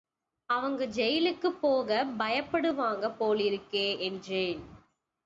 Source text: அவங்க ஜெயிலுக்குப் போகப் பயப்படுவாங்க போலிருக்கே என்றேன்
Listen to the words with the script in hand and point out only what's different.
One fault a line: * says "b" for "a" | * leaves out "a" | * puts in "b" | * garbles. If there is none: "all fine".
all fine